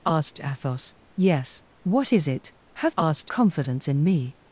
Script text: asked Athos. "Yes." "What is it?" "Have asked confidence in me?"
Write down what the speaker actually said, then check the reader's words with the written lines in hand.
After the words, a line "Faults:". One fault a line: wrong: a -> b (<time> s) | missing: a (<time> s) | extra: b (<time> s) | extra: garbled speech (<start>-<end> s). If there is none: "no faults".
asked Athos. "Yes." "What is it?" "Have asked confidence in me?"
Faults:
no faults